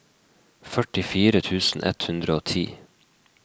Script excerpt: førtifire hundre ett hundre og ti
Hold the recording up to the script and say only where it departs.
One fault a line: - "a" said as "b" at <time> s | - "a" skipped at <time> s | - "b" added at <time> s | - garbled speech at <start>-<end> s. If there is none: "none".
- "hundre" said as "tusen" at 1.5 s